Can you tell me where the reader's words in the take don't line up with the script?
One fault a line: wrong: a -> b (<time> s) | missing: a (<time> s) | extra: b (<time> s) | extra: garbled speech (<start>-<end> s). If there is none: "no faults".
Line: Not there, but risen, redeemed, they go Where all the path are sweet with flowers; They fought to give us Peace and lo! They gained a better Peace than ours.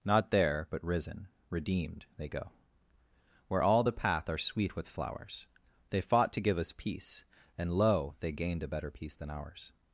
no faults